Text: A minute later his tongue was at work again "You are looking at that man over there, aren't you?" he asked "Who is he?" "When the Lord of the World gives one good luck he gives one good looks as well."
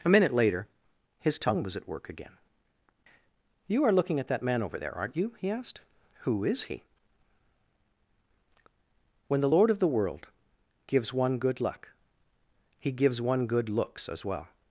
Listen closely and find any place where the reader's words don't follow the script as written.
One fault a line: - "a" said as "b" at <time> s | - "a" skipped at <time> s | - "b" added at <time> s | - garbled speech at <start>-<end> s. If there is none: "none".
none